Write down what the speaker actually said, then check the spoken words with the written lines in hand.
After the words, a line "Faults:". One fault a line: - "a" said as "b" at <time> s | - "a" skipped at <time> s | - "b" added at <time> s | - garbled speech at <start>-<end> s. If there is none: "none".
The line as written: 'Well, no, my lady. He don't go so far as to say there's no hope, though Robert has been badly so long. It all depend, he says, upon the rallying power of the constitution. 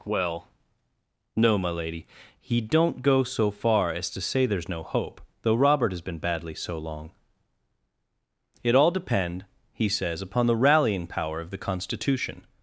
'Well, no, my lady. He don't go so far as to say there's no hope, though Robert has been badly so long. It all depend, he says, upon the rallying power of the constitution.
Faults:
none